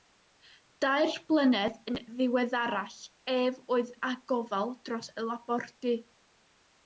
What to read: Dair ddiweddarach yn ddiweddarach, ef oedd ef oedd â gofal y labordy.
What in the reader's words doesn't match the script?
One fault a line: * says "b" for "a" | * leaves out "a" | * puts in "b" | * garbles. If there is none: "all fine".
* says "blynedd" for "ddiweddarach"
* leaves out "ef oedd"
* puts in "dros"